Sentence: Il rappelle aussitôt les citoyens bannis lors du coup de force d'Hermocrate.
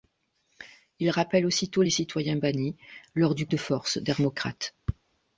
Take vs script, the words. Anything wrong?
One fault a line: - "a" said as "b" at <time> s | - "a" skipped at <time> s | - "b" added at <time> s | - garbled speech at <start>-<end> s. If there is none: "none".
- "coup" skipped at 3.5 s